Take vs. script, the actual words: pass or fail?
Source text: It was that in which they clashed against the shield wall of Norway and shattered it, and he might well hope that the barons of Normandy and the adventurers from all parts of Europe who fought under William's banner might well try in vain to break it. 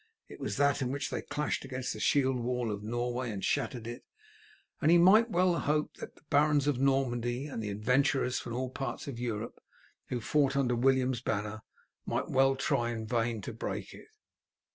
pass